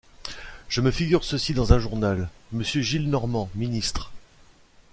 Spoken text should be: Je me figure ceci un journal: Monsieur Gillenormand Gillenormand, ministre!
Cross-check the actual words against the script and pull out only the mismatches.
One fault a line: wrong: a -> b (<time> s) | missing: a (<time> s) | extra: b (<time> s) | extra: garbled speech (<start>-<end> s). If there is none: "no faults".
extra: dans (1.5 s)
missing: Gillenormand (3.5 s)